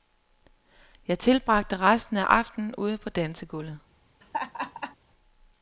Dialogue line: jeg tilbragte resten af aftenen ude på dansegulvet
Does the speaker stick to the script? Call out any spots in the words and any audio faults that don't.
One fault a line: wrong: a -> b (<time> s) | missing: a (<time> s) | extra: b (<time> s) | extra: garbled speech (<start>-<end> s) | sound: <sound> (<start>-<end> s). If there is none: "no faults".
sound: laugh (4.2-5.0 s)